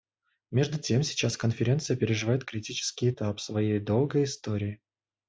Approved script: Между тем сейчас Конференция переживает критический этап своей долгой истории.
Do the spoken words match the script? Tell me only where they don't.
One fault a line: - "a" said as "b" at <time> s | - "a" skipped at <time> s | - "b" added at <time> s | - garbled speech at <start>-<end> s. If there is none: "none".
none